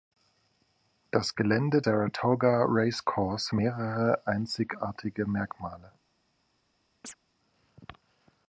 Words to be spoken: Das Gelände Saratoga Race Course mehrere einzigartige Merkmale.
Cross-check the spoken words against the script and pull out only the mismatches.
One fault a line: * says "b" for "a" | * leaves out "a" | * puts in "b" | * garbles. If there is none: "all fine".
all fine